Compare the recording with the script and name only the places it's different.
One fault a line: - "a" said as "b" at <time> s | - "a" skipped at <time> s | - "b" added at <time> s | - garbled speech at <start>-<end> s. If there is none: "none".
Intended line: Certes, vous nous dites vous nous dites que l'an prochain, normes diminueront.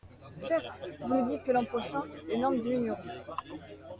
- "vous nous dites" skipped at 1.4 s
- "les" added at 2.3 s